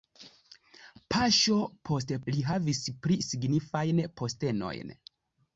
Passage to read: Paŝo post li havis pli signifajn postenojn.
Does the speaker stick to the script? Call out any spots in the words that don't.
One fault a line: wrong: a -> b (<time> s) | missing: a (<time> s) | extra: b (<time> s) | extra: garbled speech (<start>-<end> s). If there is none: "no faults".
no faults